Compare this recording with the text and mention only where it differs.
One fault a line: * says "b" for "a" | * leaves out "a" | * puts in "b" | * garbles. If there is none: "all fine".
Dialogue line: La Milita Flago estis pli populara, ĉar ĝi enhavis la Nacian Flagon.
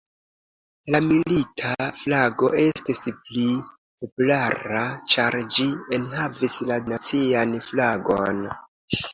all fine